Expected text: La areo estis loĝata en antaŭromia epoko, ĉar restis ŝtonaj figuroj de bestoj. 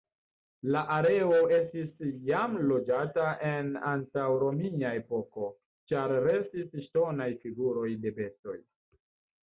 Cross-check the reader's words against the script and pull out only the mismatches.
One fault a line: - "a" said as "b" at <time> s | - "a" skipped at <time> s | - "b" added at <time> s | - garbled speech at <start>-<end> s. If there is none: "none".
- "jam" added at 2.3 s